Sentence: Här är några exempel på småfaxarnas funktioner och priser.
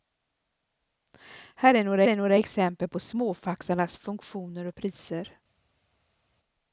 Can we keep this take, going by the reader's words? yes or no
no